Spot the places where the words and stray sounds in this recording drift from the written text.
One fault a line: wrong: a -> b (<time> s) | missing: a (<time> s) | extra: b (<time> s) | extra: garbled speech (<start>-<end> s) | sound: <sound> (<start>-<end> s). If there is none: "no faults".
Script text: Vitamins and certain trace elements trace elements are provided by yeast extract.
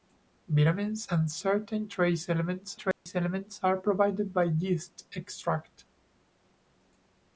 sound: dropout (2.9-3.1 s)